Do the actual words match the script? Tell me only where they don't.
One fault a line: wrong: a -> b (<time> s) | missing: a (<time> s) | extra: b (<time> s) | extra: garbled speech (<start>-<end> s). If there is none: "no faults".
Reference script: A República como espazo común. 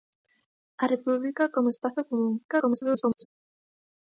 extra: garbled speech (2.5-3.3 s)